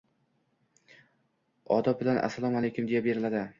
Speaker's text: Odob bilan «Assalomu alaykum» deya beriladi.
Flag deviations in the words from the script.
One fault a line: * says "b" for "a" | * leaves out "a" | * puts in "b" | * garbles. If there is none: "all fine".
all fine